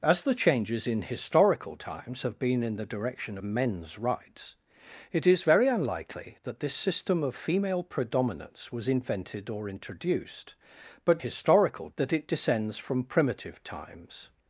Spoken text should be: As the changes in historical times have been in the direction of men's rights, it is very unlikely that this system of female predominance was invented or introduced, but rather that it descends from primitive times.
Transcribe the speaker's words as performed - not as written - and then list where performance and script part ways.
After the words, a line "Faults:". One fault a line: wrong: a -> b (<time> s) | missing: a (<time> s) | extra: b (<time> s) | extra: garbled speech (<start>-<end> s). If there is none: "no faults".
As the changes in historical times have been in the direction men's rights, it is very unlikely that this system of female predominance was invented or introduced, but historical that it descends from primitive times.
Faults:
missing: of (3.4 s)
wrong: rather -> historical (11.2 s)